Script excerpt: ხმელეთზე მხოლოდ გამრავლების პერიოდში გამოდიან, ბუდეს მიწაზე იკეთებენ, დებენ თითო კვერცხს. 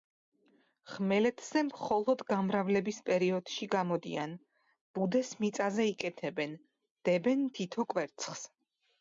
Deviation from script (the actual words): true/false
false